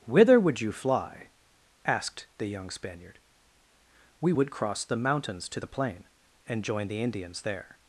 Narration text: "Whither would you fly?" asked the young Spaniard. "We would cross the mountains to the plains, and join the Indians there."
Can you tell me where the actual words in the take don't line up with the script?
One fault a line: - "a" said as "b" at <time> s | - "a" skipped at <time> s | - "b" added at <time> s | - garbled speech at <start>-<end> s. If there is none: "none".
- "plains" said as "plain" at 5.7 s